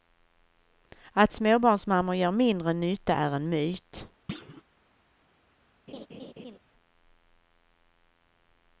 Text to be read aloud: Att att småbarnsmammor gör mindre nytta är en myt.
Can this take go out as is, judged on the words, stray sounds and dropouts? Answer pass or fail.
fail